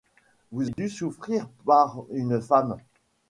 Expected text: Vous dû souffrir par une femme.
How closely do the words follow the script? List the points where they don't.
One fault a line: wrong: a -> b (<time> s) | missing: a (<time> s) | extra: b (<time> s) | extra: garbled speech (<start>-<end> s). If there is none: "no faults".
no faults